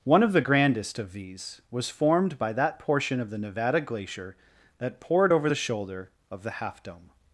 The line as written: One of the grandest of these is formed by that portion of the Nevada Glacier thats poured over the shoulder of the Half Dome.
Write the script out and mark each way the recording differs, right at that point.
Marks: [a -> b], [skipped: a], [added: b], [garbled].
One of the grandest of these [is -> was] formed by that portion of the Nevada Glacier [thats -> that] poured over the shoulder of the Half Dome.